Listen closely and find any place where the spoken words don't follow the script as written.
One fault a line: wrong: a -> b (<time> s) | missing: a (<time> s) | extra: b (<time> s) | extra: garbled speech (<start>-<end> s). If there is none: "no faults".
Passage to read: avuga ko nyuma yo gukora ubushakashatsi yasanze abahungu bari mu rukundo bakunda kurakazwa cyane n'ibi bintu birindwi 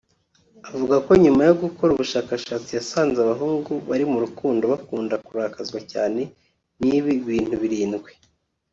no faults